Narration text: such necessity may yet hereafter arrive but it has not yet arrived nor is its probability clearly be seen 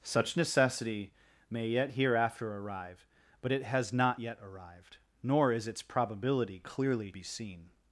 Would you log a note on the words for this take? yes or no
no